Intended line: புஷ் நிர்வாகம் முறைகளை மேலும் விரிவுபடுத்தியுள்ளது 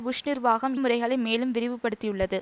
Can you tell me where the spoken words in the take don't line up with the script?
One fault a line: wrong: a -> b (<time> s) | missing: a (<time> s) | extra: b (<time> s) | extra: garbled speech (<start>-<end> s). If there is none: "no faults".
no faults